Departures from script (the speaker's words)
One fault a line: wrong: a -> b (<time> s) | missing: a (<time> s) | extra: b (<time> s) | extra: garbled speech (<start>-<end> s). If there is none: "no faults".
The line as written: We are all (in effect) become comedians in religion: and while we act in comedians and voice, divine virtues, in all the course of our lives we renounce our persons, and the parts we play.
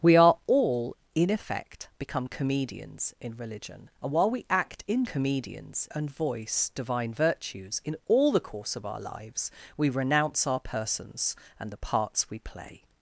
no faults